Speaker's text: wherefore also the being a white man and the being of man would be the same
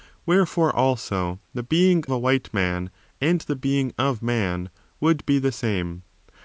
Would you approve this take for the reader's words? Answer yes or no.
yes